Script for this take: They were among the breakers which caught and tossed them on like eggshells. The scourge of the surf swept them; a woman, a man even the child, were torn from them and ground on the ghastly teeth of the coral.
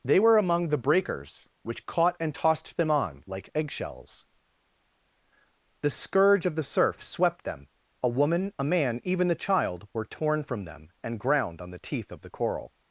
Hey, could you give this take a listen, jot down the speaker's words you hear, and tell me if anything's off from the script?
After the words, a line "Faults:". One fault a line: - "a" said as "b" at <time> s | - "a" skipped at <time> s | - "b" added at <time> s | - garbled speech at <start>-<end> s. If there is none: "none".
They were among the breakers which caught and tossed them on like eggshells. The scourge of the surf swept them; a woman, a man even the child, were torn from them and ground on the teeth of the coral.
Faults:
- "ghastly" skipped at 11.8 s